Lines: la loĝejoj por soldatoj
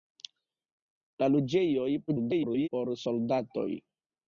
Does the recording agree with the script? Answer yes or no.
no